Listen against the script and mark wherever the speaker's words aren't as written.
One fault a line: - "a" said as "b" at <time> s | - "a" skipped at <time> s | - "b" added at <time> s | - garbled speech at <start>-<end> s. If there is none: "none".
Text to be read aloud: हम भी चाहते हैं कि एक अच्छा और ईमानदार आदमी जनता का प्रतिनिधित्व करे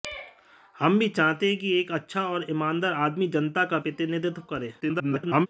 - garbled speech at 4.8-5.5 s